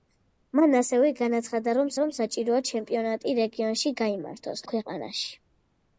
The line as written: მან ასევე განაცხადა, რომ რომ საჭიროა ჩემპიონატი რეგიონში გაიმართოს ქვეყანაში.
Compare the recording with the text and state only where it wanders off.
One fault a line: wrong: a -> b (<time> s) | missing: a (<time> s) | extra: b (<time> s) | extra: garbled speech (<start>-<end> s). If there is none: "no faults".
no faults